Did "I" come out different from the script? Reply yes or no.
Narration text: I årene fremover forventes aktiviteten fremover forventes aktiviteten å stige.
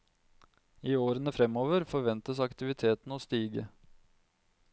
no